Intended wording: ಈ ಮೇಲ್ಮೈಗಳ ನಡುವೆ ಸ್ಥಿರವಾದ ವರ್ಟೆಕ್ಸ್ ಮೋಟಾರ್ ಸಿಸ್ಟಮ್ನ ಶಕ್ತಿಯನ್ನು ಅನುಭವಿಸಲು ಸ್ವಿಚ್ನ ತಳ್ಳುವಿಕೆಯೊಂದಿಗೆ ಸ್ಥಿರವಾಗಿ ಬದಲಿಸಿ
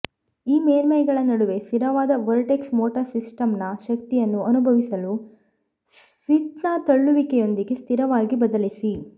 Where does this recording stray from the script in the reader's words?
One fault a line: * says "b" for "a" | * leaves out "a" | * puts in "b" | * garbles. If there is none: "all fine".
all fine